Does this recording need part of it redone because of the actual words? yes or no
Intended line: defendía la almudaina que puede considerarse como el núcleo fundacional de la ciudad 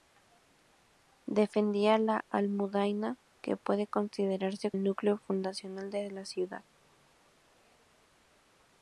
yes